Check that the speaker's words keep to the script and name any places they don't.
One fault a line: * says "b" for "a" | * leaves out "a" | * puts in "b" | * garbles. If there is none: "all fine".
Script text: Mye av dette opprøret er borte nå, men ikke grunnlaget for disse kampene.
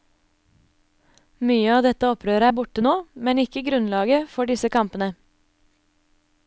all fine